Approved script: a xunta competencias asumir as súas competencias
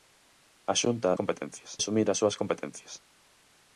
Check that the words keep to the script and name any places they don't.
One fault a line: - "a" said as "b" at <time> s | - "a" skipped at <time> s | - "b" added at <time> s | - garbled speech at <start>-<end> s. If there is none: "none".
none